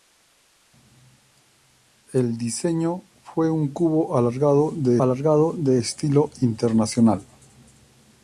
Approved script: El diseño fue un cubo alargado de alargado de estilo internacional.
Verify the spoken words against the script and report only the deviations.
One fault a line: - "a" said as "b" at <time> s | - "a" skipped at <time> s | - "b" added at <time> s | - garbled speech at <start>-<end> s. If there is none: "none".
none